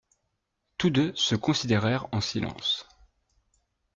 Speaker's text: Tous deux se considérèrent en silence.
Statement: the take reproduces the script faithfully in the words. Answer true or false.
true